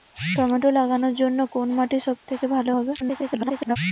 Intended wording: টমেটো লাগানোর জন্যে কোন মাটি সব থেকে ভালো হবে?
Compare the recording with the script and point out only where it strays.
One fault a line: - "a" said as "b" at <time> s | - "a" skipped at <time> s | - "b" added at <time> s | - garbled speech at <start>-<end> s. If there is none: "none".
- garbled speech at 3.0-3.8 s